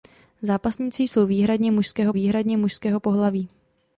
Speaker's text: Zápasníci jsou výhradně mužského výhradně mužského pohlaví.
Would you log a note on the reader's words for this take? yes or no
no